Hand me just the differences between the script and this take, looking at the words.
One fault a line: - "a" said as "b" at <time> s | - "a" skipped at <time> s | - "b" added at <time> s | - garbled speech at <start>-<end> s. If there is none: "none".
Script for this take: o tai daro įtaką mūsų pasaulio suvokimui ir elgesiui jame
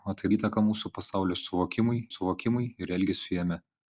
- "daro" skipped at 0.3 s
- "suvokimui" added at 2.1 s